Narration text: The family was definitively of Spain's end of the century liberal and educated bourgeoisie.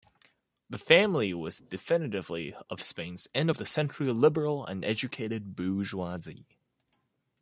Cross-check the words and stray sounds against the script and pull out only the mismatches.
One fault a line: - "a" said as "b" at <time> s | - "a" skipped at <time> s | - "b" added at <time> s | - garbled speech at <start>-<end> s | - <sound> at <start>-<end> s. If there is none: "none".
none